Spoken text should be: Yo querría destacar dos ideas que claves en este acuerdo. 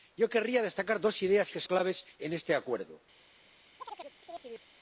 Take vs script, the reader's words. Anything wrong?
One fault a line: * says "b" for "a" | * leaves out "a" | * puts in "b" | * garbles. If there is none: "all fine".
all fine